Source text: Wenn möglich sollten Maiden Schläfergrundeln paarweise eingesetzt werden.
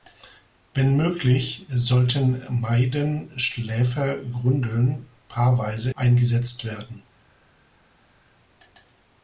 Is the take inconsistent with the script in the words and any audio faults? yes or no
no